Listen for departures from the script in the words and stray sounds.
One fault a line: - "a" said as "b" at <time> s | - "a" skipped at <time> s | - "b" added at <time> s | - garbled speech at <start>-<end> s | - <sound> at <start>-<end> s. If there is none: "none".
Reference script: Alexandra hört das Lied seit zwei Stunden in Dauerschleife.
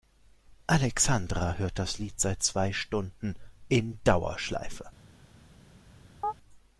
- chirp at 6.2-6.3 s